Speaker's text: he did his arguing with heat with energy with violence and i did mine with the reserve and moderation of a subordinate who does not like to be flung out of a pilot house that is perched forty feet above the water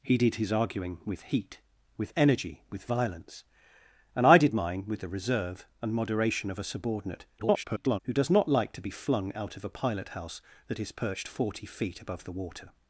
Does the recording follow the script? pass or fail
fail